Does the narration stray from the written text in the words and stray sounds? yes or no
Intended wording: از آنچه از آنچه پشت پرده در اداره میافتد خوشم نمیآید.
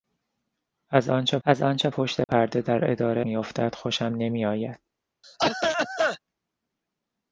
yes